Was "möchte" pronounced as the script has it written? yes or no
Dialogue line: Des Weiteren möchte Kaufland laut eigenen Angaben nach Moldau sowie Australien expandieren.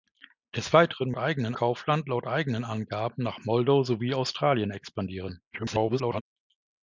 no